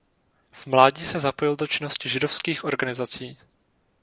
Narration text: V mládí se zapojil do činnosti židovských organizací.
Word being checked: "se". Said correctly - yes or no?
yes